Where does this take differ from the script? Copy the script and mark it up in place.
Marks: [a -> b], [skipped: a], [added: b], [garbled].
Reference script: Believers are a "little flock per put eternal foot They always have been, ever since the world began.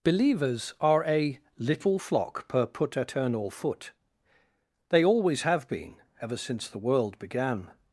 Believers are a "little flock per put eternal foot They always have been, ever since the world began.